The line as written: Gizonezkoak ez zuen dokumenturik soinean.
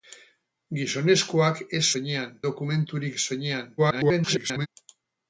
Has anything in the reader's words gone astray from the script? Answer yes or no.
yes